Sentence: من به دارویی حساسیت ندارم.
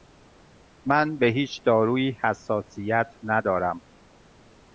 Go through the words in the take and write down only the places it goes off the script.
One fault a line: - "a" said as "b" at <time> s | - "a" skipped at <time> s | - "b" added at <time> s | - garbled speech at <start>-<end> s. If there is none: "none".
- "هیچ" added at 1.3 s